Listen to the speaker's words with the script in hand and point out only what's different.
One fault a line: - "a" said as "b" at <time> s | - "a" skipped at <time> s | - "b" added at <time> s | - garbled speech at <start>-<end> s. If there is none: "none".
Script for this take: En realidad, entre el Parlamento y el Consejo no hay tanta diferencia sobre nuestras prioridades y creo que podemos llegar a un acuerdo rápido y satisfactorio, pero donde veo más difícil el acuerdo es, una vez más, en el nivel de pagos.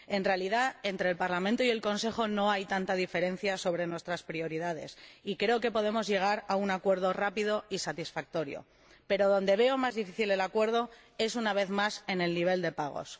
none